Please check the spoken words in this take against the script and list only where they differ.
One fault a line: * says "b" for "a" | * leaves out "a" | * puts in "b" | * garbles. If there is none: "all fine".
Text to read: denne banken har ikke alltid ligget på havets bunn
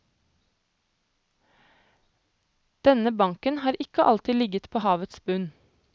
all fine